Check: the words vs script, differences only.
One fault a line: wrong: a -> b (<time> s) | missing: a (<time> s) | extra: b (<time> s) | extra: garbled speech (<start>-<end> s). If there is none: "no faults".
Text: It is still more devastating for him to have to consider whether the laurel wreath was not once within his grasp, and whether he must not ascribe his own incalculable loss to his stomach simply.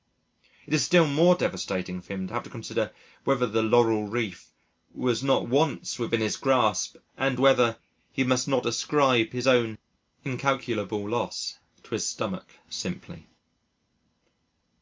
no faults